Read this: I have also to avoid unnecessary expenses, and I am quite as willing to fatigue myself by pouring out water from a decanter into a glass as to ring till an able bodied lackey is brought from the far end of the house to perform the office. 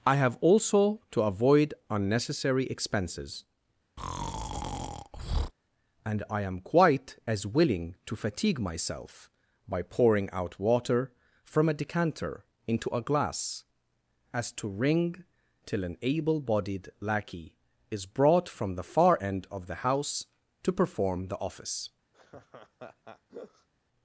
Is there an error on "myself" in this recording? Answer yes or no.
no